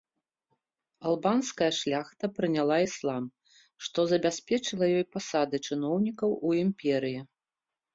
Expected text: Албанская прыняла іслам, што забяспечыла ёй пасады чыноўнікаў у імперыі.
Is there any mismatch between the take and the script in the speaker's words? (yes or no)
yes